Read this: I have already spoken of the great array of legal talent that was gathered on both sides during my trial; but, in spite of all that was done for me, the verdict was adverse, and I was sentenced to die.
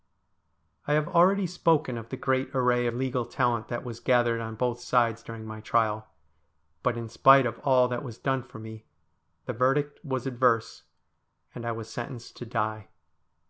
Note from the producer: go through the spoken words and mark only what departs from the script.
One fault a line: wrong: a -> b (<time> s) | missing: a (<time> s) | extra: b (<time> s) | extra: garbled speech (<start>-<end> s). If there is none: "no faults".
no faults